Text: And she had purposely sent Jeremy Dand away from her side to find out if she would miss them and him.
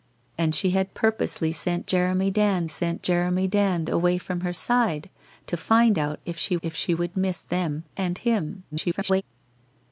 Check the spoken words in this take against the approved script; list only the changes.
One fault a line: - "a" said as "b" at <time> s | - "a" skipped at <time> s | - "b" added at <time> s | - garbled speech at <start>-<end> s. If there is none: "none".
- "sent Jeremy Dand" added at 2.7 s
- "if she" added at 6.6 s
- garbled speech at 8.7-9.2 s